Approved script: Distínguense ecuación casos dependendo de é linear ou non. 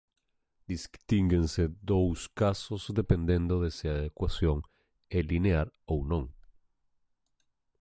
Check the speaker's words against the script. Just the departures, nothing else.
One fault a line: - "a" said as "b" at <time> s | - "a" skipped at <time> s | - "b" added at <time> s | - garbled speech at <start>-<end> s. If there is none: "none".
- "ecuación" said as "dous" at 1.8 s
- "se a ecuación" added at 3.7 s